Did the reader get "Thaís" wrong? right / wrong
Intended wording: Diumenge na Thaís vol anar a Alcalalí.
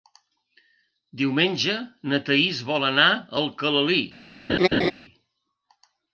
right